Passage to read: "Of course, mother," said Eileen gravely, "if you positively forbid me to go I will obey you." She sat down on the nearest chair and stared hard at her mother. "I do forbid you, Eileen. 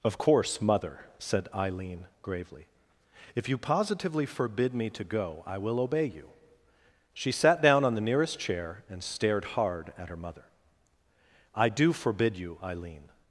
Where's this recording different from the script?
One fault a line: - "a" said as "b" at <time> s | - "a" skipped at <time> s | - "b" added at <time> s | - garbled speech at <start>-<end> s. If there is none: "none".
none